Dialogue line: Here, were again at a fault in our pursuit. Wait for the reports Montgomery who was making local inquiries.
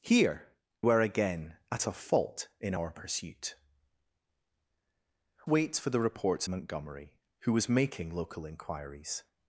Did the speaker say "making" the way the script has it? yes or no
yes